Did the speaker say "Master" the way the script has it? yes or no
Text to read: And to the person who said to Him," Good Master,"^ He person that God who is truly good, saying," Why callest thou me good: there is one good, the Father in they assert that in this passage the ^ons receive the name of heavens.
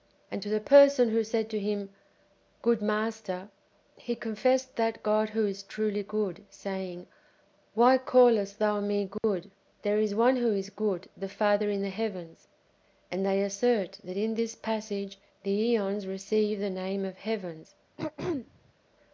yes